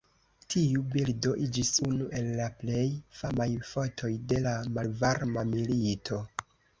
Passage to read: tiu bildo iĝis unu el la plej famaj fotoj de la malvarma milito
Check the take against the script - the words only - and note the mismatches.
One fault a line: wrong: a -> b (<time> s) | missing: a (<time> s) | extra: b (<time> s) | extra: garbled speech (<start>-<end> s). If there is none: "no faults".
no faults